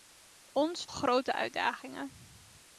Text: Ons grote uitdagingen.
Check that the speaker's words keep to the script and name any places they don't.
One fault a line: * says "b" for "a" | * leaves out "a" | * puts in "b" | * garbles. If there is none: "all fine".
all fine